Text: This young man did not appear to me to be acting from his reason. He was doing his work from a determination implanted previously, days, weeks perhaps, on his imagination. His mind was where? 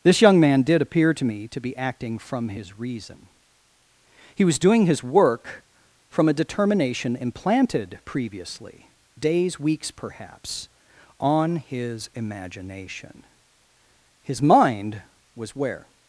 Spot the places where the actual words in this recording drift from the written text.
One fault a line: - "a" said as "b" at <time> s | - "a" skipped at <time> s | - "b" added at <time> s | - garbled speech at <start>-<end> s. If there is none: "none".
- "not" skipped at 0.8 s